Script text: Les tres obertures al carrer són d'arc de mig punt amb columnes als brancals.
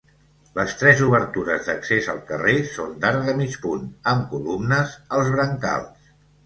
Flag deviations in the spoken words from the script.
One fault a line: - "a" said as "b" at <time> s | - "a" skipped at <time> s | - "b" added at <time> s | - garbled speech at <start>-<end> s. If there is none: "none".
- "d'accés" added at 1.7 s